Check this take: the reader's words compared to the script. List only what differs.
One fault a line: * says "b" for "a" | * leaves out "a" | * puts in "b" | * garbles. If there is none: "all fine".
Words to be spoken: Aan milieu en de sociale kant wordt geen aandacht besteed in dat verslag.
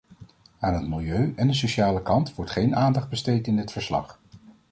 * puts in "het"
* says "dit" for "dat"